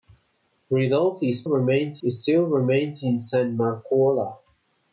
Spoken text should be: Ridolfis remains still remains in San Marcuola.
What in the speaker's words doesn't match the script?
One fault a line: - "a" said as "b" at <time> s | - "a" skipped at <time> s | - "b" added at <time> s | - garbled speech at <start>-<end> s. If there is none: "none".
none